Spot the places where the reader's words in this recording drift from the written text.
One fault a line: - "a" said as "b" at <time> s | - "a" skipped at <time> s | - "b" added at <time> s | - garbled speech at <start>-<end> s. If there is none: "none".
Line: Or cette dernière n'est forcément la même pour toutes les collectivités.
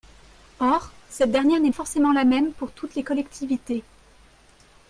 none